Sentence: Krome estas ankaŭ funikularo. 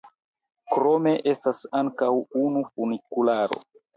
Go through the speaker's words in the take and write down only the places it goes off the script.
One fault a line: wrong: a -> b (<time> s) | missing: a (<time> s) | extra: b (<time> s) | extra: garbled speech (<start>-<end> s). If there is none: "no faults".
extra: unu (2.5 s)